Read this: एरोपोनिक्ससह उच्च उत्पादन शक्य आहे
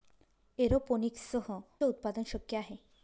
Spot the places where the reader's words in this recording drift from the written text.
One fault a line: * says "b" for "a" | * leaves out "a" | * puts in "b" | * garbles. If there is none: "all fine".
* leaves out "उच्च"